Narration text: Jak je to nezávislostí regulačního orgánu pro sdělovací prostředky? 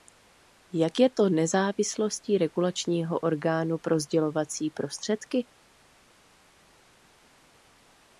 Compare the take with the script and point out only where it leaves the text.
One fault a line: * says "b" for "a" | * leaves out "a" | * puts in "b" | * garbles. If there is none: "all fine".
all fine